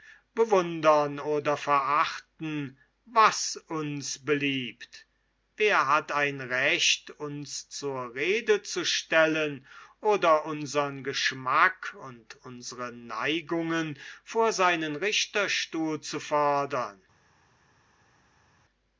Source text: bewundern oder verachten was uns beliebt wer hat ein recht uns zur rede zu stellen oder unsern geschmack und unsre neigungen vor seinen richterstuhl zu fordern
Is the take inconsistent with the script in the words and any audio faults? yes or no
no